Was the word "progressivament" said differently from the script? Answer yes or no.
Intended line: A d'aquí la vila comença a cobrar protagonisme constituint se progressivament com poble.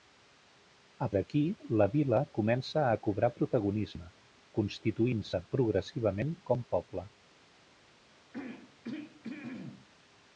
no